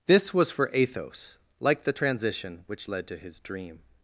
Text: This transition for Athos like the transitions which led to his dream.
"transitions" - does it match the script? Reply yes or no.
no